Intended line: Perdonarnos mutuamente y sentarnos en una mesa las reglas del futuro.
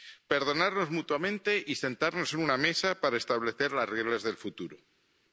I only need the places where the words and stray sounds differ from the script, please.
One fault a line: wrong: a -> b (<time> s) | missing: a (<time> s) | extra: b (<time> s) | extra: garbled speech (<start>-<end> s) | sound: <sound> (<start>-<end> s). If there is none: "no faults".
extra: para establecer (3.0 s)